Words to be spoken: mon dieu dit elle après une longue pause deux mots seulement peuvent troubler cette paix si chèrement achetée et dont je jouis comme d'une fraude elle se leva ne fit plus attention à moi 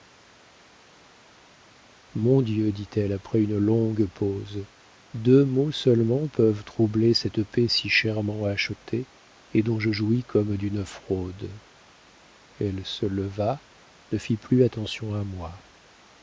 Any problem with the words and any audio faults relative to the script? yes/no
no